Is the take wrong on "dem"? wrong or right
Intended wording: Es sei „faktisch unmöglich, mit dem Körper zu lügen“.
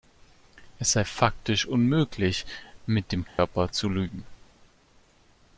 right